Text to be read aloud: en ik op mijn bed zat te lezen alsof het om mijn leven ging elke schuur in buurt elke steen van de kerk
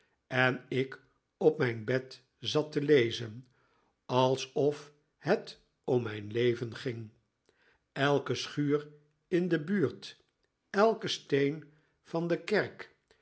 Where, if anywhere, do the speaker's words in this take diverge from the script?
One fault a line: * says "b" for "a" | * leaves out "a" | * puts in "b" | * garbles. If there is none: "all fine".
* puts in "de"